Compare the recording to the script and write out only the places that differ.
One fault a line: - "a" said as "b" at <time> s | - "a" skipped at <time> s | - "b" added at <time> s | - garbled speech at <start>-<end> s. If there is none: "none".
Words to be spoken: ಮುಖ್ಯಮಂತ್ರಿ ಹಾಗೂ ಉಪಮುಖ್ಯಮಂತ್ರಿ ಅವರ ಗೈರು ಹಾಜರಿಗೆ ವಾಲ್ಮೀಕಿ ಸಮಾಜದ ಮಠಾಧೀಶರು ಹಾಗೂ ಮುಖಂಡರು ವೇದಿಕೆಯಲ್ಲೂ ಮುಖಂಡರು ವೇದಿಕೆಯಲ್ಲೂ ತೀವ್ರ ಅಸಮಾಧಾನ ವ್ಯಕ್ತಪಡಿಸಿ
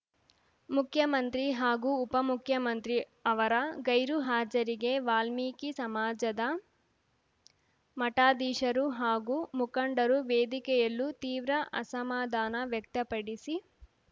- "ಮುಖಂಡರು ವೇದಿಕೆಯಲ್ಲೂ" skipped at 11.1 s